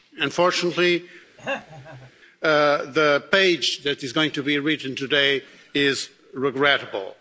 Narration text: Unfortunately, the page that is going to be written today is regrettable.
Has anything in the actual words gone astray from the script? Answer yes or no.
no